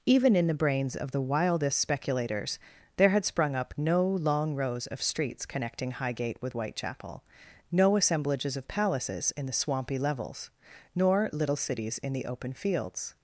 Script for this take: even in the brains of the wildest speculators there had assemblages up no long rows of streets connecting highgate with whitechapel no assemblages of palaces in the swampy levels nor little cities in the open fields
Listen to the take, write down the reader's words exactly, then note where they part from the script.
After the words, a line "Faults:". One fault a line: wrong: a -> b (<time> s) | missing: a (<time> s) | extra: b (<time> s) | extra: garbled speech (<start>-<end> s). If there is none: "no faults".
even in the brains of the wildest speculators there had sprung up no long rows of streets connecting highgate with whitechapel no assemblages of palaces in the swampy levels nor little cities in the open fields
Faults:
wrong: assemblages -> sprung (3.2 s)